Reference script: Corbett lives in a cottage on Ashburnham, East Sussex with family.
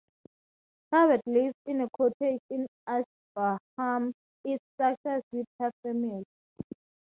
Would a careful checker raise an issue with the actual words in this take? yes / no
yes